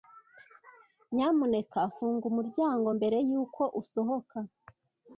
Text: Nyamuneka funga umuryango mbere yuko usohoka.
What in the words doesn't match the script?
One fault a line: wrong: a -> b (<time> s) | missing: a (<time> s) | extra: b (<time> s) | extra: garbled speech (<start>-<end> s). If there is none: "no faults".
no faults